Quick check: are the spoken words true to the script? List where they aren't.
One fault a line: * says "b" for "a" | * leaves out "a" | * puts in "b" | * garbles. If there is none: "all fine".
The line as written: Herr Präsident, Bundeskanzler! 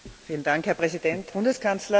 all fine